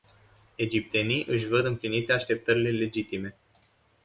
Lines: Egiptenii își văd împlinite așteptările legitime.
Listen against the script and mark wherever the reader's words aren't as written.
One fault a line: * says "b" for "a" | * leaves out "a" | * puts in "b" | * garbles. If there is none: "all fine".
all fine